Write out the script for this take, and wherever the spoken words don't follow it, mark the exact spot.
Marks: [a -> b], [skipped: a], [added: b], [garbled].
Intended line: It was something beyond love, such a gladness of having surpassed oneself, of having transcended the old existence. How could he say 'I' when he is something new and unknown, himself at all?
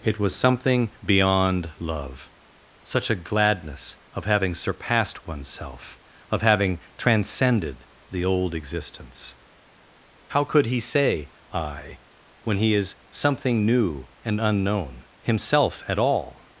It was something beyond love, such a gladness of having surpassed oneself, of having transcended the old existence. How could he say 'I' when he is something new and unknown, himself at all?